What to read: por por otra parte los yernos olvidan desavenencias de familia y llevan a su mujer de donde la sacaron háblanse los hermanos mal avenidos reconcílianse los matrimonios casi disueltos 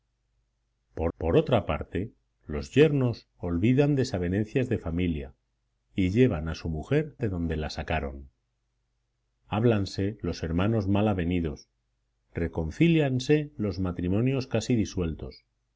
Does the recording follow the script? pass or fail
pass